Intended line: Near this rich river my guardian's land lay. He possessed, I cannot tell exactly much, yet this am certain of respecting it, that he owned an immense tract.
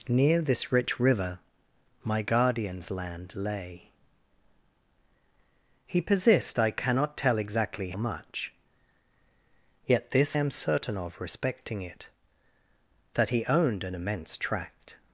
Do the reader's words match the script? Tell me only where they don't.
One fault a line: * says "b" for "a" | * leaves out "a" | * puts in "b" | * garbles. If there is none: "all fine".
all fine